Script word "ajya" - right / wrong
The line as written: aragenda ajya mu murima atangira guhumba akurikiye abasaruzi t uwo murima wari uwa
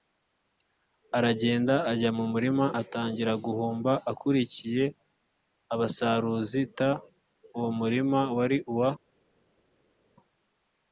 right